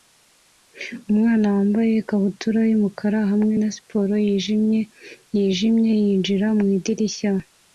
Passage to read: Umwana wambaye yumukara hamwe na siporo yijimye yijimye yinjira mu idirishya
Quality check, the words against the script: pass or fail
fail